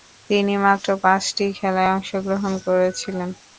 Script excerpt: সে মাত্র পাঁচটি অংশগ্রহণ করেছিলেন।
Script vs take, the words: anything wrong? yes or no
yes